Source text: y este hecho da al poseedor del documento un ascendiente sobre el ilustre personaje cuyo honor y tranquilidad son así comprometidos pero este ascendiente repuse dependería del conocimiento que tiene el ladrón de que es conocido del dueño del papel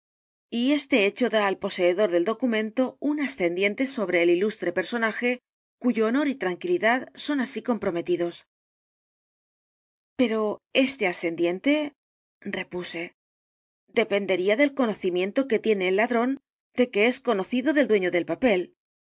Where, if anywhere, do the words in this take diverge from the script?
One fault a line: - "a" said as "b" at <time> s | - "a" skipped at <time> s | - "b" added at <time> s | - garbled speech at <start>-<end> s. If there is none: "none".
none